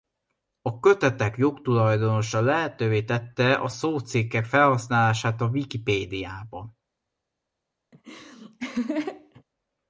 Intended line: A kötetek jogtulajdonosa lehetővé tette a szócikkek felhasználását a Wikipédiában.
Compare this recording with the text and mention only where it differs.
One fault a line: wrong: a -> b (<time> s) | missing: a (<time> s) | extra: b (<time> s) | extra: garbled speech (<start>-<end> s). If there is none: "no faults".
no faults